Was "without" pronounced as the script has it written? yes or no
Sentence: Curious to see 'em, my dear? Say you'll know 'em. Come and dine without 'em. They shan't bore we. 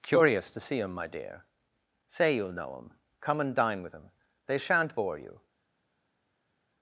no